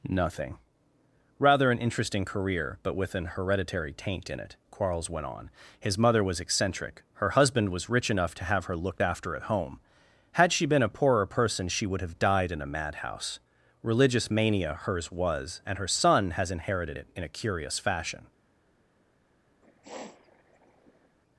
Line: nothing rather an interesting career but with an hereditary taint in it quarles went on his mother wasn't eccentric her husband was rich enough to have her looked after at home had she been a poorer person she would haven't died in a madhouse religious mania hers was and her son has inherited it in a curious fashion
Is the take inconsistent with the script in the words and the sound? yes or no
yes